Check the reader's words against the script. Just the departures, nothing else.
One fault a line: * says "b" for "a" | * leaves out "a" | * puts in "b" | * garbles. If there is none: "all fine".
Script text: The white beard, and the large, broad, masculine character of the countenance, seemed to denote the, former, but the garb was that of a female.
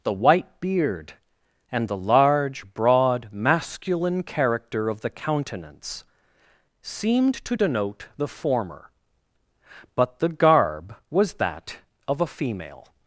all fine